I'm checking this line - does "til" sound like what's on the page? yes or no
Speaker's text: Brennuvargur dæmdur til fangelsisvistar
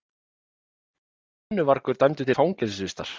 no